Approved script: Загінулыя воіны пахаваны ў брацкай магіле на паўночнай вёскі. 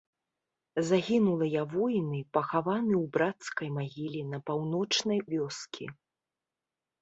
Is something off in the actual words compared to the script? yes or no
no